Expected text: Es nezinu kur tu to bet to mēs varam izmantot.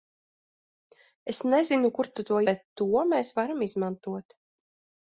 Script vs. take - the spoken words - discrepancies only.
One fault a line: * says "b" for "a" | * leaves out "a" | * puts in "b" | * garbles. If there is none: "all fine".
all fine